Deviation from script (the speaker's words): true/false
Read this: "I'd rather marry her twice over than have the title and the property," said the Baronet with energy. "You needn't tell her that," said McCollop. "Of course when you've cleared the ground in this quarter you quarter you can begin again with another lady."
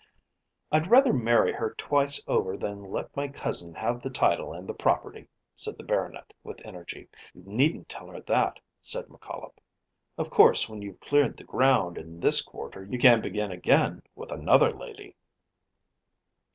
true